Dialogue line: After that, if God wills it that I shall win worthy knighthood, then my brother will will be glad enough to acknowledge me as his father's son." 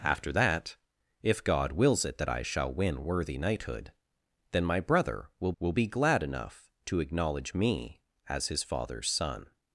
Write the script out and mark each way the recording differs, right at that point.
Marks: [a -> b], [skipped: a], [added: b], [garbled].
After that, if God wills it that I shall win worthy knighthood, then my brother will will be glad enough to acknowledge me as his father's son."